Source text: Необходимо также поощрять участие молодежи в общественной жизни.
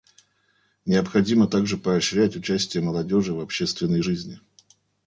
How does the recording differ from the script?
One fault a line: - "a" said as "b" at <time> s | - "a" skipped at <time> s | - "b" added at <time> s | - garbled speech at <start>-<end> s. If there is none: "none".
none